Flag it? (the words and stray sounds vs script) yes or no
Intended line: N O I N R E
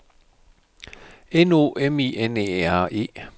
yes